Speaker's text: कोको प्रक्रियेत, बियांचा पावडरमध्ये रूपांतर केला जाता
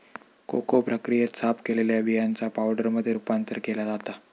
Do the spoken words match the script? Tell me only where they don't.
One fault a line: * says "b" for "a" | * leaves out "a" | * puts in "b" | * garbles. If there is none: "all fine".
* puts in "साफ केलेल्या"